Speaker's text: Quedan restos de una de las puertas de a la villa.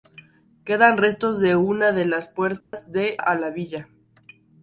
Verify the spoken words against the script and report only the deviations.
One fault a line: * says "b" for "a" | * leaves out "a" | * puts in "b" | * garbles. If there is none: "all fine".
all fine